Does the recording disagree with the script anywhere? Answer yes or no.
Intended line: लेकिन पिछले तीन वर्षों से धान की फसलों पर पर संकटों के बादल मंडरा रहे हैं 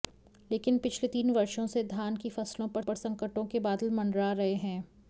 no